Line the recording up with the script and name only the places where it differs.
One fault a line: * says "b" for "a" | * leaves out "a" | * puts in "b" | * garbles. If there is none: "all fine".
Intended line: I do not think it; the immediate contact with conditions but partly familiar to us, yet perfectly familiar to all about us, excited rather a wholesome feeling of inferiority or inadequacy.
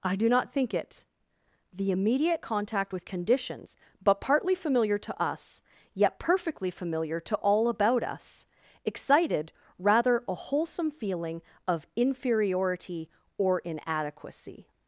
all fine